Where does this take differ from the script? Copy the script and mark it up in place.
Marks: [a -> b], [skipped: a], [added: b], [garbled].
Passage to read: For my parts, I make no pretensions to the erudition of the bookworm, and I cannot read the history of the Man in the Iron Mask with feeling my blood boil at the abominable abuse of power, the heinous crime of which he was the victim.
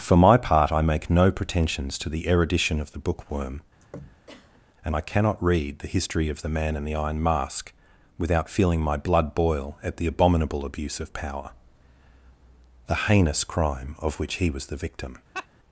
For my [parts, -> part] I make no pretensions to the erudition of the bookworm, and I cannot read the history of the Man in the Iron Mask [with -> without] feeling my blood boil at the abominable abuse of power, the heinous crime of which he was the victim.